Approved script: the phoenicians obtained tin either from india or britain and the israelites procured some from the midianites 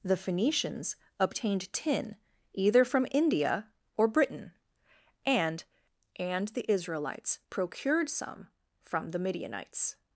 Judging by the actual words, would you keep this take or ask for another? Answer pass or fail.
fail